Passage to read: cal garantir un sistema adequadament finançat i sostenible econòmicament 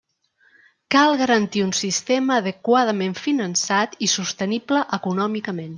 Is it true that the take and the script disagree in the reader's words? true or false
false